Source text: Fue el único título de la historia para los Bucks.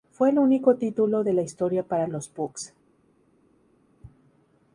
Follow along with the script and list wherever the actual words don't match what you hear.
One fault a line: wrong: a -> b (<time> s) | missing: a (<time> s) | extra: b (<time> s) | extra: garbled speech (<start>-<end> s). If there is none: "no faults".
no faults